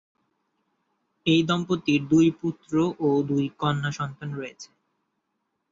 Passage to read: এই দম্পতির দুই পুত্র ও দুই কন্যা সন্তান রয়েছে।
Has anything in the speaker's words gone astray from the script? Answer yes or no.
no